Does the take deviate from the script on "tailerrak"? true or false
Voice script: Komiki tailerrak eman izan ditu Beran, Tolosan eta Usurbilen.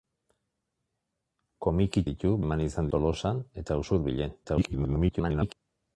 true